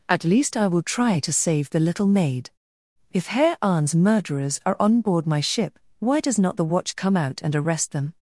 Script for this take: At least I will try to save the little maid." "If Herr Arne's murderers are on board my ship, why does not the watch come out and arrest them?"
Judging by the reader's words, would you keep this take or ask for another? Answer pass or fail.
pass